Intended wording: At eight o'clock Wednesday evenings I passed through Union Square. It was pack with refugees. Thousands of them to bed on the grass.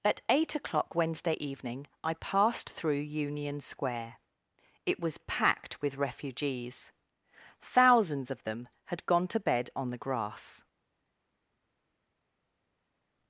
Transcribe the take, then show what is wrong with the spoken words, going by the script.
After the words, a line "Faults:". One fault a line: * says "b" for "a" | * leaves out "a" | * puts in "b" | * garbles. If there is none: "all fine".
At eight o'clock Wednesday evening I passed through Union Square. It was packed with refugees. Thousands of them had gone to bed on the grass.
Faults:
* says "evening" for "evenings"
* says "packed" for "pack"
* puts in "had gone"